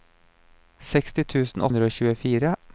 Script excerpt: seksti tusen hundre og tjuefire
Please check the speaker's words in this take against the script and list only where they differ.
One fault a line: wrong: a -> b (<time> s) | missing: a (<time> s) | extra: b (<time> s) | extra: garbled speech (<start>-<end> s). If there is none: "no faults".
no faults